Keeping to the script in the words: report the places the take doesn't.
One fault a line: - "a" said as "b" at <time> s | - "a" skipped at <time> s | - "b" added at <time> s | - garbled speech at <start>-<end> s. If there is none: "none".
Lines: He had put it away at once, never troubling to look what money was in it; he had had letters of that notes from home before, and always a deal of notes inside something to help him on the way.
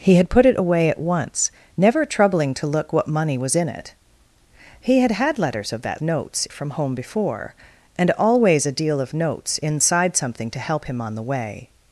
none